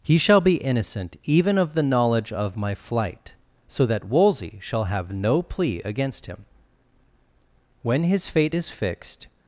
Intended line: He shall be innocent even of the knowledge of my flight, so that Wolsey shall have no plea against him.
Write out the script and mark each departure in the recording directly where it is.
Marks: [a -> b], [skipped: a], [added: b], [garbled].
He shall be innocent even of the knowledge of my flight, so that Wolsey shall have no plea against him. [added: When his fate is fixed]